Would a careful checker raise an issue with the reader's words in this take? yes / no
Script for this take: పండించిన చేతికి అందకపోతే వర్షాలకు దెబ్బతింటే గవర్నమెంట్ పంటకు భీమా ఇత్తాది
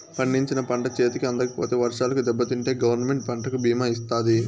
yes